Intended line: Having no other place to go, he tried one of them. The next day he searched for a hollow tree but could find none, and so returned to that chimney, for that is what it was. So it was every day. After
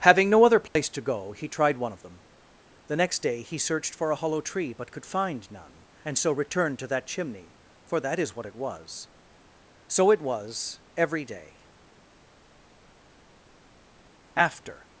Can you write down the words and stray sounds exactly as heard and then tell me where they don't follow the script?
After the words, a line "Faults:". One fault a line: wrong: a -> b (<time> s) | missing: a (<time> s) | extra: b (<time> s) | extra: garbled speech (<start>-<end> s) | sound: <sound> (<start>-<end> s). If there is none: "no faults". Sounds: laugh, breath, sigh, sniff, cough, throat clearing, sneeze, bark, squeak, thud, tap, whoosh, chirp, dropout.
Having no other place to go, he tried one of them. The next day he searched for a hollow tree but could find none, and so returned to that chimney, for that is what it was. So it was every day. After
Faults:
sound: dropout (0.7-0.8 s)